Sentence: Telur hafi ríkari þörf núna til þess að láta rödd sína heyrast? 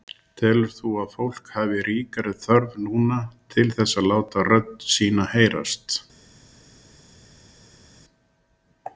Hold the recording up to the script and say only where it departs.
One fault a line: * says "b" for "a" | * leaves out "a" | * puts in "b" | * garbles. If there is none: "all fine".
* puts in "þú að fólk"